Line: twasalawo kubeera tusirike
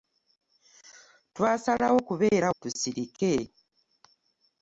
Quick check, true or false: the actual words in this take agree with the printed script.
true